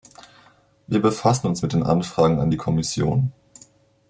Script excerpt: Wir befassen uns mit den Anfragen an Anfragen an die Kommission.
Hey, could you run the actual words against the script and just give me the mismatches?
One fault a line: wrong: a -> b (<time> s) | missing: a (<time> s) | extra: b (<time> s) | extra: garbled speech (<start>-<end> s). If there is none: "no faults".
missing: Anfragen an (2.5 s)